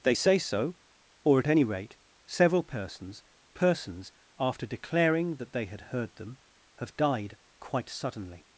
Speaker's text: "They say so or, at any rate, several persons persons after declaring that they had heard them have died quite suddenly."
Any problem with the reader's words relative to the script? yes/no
no